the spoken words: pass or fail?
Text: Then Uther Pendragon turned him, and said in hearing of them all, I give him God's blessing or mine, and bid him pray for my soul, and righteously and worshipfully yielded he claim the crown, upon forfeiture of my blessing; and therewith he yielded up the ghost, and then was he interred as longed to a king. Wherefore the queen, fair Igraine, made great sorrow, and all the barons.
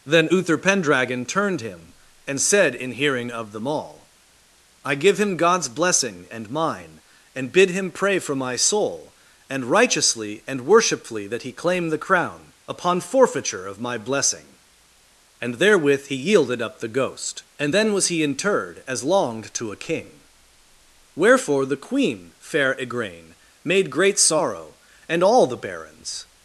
fail